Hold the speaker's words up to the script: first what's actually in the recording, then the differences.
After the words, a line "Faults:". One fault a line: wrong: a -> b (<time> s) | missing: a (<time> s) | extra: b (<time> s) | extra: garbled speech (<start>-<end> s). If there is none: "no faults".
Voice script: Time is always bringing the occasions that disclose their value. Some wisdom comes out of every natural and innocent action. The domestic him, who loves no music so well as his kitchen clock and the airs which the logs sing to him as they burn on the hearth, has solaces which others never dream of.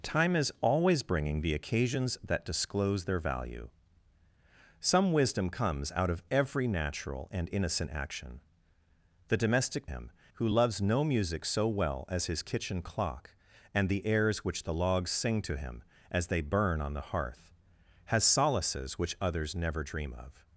Time is always bringing the occasions that disclose their value. Some wisdom comes out of every natural and innocent action. The domestic him, who loves no music so well as his kitchen clock and the airs which the logs sing to him as they burn on the hearth, has solaces which others never dream of.
Faults:
no faults